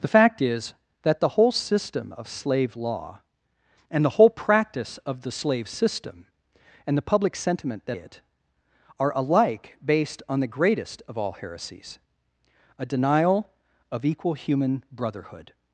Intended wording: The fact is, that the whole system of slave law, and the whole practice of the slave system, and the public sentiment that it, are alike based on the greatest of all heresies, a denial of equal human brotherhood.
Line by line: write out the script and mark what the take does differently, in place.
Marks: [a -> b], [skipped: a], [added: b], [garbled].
The fact is, that the whole system of slave law, and the whole practice of the slave system, and the public sentiment that it, are alike based on the greatest of all heresies, a denial of equal human brotherhood.